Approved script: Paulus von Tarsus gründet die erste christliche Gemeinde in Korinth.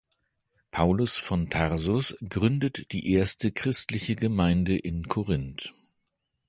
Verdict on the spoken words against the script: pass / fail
pass